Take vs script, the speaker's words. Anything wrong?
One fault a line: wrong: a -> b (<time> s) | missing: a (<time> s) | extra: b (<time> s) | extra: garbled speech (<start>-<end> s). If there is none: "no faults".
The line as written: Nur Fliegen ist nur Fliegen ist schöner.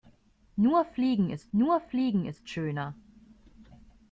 no faults